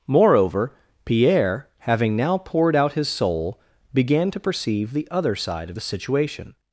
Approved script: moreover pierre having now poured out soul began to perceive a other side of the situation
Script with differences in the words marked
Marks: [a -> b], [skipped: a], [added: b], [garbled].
moreover pierre having now poured out [added: his] soul began to perceive [a -> the] other side of the situation